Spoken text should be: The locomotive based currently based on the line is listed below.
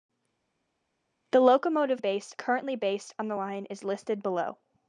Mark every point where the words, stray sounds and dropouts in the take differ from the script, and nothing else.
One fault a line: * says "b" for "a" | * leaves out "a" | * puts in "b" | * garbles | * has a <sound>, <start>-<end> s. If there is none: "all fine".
all fine